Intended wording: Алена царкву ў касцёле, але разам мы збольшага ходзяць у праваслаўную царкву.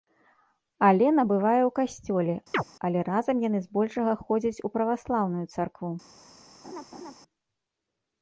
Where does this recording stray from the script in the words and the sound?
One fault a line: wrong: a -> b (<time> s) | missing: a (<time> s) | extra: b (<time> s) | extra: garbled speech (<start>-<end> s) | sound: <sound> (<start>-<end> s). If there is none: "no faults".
wrong: царкву -> бывае (1.3 s)
sound: chirp (2.5-2.6 s)
wrong: мы -> яны (3.5 s)
sound: laugh (6.6-7.1 s)